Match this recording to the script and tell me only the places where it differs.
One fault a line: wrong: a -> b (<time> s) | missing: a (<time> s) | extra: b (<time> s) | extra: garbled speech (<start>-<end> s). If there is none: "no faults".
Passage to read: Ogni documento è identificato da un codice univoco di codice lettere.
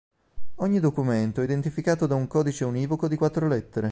wrong: codice -> quattro (3.1 s)